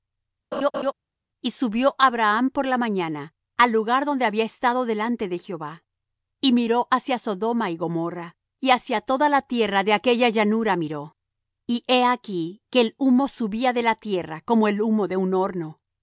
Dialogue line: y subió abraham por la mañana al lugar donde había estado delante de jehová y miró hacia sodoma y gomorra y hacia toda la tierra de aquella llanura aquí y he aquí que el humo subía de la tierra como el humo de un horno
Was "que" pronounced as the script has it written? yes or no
yes